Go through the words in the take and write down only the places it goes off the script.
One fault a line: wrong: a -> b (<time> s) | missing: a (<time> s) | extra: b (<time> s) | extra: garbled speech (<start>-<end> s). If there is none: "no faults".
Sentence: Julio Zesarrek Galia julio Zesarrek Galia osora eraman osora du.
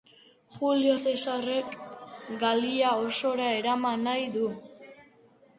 missing: julio Zesarrek Galia (2.9 s)
wrong: osora -> nahi (4.1 s)